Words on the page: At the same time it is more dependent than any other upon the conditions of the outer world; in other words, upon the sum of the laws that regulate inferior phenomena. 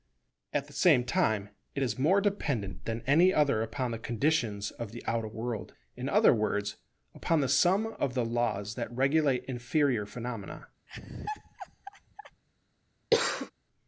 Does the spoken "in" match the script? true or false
true